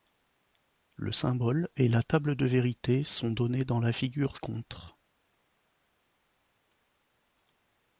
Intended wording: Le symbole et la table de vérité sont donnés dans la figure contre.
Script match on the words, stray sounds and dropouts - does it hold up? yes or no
yes